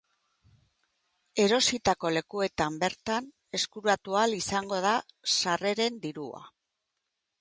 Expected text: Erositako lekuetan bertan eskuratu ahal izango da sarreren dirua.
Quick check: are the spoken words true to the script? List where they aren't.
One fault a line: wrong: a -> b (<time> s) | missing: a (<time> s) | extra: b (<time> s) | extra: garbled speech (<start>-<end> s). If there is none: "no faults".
no faults